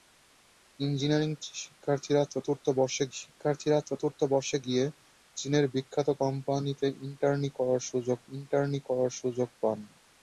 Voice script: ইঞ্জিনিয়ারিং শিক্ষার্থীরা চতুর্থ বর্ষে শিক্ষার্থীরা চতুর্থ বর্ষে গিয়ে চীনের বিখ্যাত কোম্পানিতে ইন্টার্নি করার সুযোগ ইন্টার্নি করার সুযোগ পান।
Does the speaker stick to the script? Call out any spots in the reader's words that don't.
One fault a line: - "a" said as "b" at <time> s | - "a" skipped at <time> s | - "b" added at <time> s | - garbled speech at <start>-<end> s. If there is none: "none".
none